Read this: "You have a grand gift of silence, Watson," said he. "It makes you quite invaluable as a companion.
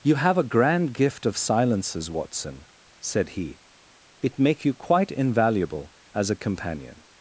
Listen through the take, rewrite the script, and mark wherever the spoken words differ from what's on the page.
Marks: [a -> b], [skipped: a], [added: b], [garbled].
"You have a grand gift of [silence, -> silences] Watson," said he. "It [makes -> make] you quite invaluable as a companion.